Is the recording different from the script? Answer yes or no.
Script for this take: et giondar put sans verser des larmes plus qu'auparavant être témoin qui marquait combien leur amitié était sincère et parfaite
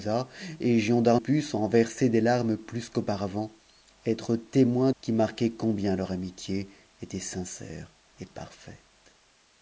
no